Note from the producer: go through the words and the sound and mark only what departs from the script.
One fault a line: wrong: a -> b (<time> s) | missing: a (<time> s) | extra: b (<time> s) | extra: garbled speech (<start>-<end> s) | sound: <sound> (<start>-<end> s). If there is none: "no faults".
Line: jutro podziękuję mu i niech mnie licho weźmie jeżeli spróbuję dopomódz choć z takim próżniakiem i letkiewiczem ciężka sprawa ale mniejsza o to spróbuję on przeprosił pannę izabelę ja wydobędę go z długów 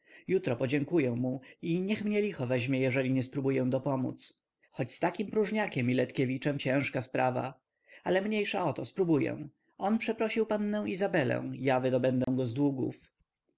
extra: nie (3.1 s)
sound: dropout (12.2-12.3 s)